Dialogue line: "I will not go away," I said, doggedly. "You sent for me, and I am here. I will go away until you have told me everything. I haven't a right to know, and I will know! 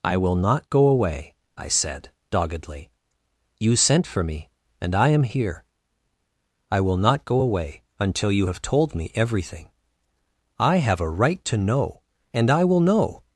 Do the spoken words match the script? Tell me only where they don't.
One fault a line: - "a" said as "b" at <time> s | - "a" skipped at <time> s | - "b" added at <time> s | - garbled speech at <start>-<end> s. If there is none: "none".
- "not" added at 7.0 s
- "haven't" said as "have" at 10.8 s